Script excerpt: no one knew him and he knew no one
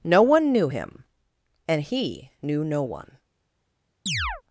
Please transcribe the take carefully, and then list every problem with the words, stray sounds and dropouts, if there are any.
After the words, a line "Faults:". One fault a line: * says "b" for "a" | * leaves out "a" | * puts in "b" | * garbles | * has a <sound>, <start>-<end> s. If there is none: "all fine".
no one knew him and he knew no one
Faults:
* has a chirp, 4.1-4.4 s